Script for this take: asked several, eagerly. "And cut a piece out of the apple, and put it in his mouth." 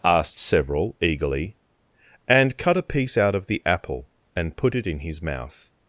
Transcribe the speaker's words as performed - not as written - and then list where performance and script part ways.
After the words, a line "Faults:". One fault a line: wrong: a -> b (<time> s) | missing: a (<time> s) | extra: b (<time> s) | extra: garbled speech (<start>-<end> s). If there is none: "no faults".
asked several, eagerly. "And cut a piece out of the apple, and put it in his mouth."
Faults:
no faults